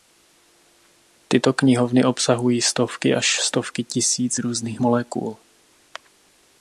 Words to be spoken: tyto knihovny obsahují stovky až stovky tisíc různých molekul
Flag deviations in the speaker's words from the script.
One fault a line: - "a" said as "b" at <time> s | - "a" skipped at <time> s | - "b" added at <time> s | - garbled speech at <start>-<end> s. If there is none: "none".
none